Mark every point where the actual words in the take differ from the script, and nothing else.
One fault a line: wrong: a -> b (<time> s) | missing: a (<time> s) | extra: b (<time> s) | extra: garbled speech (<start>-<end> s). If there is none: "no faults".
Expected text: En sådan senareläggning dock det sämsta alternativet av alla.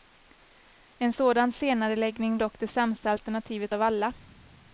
no faults